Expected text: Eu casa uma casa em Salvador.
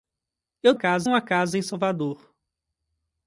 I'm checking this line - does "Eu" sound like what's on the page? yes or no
yes